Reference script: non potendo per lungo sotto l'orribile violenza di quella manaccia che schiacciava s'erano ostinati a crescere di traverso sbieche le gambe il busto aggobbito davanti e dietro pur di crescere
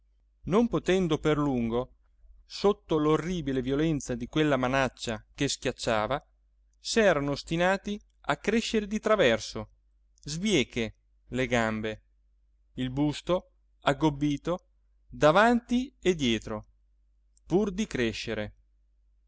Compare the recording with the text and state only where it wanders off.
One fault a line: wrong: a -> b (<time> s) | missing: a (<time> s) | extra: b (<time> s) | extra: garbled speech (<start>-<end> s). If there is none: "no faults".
no faults